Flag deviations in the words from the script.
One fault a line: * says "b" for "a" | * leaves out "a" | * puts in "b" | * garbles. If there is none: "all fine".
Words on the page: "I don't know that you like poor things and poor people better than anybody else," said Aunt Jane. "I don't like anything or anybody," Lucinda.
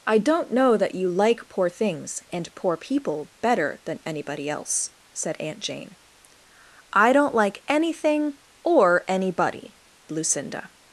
all fine